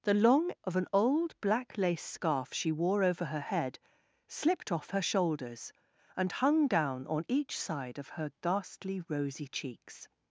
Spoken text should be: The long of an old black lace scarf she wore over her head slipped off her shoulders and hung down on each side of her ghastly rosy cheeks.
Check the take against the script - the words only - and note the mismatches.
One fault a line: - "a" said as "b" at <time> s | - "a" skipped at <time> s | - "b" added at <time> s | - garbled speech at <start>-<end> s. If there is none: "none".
none